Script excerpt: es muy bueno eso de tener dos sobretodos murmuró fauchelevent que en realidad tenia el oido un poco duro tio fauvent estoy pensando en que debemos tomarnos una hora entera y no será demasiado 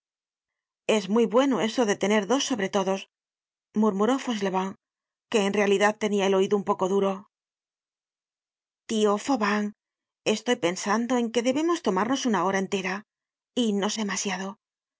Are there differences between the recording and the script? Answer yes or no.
yes